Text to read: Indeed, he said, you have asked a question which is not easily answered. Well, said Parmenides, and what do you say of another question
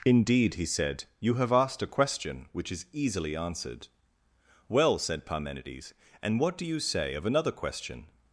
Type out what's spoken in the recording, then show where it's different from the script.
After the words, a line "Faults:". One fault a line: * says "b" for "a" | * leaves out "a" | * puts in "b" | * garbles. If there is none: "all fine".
Indeed, he said, you have asked a question which is easily answered. Well, said Parmenides, and what do you say of another question
Faults:
* leaves out "not"